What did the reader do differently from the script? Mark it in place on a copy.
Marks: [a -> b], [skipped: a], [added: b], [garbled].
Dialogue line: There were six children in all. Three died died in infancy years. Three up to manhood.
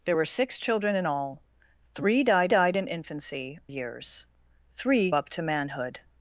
There were six children in all. Three died died in infancy years. Three up to manhood.